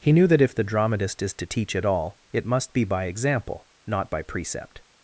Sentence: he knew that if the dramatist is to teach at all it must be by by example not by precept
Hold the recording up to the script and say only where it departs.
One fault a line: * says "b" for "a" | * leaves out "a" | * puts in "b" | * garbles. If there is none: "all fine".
* leaves out "by"